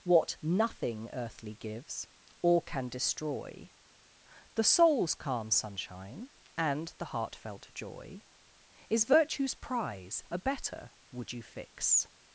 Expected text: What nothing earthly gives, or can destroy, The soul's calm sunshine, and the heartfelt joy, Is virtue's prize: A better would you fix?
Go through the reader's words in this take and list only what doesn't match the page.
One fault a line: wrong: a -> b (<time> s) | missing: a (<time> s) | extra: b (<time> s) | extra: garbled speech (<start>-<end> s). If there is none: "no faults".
no faults